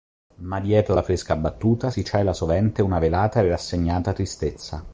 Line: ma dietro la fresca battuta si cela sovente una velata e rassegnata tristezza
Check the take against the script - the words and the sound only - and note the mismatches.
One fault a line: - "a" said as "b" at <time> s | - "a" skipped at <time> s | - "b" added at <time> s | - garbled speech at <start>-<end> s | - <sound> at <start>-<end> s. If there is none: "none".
none